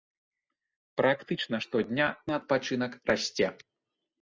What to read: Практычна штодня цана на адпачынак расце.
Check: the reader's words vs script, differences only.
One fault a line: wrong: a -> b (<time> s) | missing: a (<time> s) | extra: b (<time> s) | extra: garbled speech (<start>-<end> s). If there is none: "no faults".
missing: цана (2.1 s)